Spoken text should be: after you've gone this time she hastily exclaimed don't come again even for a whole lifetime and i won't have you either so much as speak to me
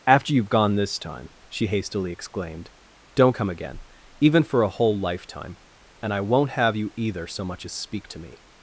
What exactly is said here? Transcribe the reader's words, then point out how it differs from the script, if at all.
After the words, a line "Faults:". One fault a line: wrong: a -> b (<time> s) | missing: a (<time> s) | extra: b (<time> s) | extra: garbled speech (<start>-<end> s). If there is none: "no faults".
after you've gone this time she hastily exclaimed don't come again even for a whole lifetime and i won't have you either so much as speak to me
Faults:
no faults